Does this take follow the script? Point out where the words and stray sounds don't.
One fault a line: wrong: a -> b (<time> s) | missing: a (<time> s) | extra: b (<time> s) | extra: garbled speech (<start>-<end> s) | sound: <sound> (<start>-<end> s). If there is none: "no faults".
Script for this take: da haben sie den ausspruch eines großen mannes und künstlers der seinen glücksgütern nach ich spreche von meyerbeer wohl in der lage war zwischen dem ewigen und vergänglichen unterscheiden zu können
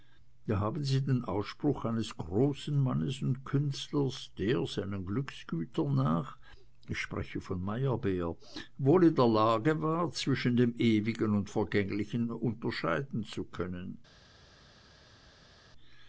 no faults